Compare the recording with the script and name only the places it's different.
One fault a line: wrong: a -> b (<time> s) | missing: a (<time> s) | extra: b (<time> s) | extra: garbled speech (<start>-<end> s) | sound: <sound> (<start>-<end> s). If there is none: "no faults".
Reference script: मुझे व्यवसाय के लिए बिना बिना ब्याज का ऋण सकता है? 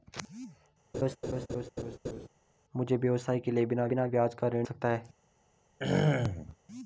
sound: laugh (0.9-2.3 s)
sound: throat clearing (5.8-6.6 s)